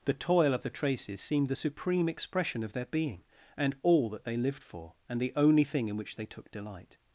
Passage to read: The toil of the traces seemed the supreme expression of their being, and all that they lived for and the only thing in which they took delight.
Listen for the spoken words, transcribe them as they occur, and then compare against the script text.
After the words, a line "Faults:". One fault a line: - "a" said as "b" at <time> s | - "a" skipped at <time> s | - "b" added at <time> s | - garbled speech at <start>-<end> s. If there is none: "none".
The toil of the traces seemed the supreme expression of their being, and all that they lived for and the only thing in which they took delight.
Faults:
none